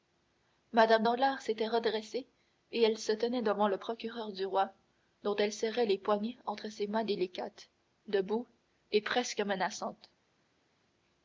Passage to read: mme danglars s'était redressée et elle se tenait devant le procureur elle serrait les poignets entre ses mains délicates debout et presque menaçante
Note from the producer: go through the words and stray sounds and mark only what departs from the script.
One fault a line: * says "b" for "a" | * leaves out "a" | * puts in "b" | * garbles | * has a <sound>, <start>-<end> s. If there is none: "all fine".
* puts in "du roi dont"